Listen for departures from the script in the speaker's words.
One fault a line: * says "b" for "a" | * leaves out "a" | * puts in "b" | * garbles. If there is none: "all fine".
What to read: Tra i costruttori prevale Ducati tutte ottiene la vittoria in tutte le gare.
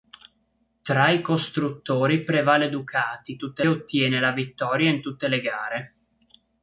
all fine